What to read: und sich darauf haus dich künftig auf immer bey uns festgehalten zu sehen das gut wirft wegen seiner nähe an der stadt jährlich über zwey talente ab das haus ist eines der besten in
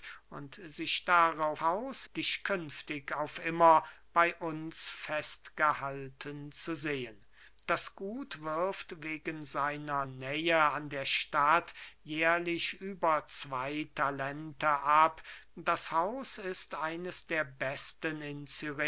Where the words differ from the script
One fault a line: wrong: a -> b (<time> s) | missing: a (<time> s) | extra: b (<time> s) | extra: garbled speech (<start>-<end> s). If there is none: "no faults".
no faults